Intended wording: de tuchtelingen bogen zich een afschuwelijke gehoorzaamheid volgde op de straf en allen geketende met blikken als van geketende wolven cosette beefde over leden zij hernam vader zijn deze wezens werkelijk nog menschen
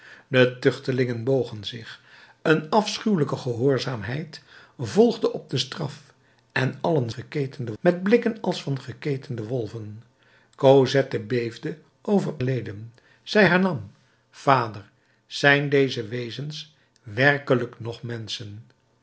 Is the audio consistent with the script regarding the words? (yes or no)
yes